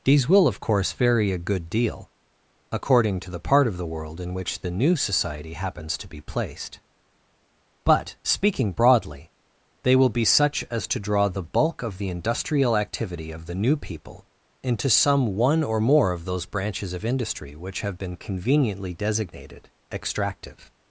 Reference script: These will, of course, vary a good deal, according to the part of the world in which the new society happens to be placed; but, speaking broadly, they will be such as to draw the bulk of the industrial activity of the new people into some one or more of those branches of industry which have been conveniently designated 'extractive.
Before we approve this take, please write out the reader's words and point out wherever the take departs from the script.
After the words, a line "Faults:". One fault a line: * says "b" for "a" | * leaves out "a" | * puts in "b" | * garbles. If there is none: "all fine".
These will, of course, vary a good deal, according to the part of the world in which the new society happens to be placed; but, speaking broadly, they will be such as to draw the bulk of the industrial activity of the new people into some one or more of those branches of industry which have been conveniently designated 'extractive.
Faults:
all fine